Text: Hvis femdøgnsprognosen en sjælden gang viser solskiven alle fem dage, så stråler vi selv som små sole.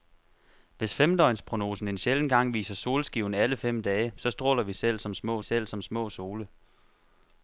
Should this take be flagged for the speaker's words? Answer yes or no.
yes